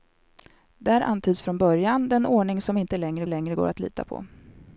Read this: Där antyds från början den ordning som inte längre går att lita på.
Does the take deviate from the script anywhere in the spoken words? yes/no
yes